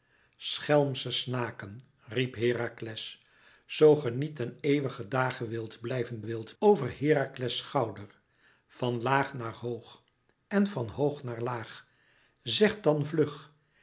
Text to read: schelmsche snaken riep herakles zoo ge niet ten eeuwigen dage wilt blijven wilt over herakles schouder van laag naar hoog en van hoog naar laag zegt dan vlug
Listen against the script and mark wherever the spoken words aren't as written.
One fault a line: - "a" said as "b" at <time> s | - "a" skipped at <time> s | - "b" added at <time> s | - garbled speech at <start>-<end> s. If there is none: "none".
none